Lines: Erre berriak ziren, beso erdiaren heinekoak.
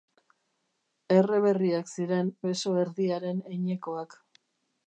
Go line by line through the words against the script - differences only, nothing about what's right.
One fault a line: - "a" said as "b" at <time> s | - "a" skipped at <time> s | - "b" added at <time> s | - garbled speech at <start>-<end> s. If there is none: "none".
none